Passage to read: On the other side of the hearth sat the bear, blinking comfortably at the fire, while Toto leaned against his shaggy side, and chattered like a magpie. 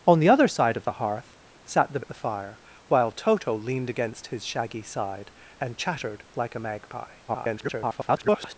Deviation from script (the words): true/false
true